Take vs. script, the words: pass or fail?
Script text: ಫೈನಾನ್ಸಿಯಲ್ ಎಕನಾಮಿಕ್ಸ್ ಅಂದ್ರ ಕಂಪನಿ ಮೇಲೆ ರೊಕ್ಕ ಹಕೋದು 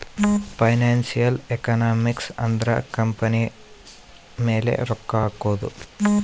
pass